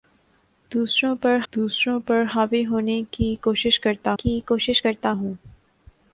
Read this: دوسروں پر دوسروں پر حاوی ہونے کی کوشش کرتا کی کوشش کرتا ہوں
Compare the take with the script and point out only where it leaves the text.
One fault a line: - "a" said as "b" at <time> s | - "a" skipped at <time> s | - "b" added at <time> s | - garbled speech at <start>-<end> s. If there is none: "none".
none